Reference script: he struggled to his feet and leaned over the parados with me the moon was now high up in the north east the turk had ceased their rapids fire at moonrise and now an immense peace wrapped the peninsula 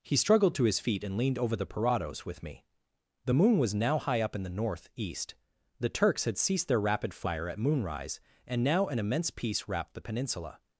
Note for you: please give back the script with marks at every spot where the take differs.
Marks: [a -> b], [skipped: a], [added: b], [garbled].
he struggled to his feet and leaned over the parados with me the moon was now high up in the north east the [turk -> turks] had ceased their [rapids -> rapid] fire at moonrise and now an immense peace wrapped the peninsula